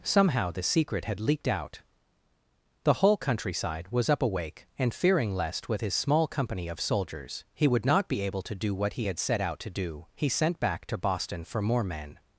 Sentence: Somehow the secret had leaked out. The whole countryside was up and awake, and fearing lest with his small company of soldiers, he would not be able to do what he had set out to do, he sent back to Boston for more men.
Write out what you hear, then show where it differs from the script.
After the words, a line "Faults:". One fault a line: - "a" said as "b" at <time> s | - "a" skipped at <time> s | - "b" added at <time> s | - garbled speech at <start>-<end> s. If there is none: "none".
Somehow the secret had leaked out. The whole countryside was up awake, and fearing lest with his small company of soldiers, he would not be able to do what he had set out to do, he sent back to Boston for more men.
Faults:
- "and" skipped at 4.2 s